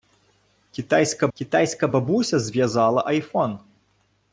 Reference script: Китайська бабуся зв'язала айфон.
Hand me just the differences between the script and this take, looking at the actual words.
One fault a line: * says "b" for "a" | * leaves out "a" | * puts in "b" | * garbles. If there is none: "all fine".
* puts in "китайська"